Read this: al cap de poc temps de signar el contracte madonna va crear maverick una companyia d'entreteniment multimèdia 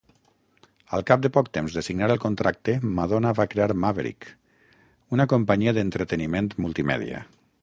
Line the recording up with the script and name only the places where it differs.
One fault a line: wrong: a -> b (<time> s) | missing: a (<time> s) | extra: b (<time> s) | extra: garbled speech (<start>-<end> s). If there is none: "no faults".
no faults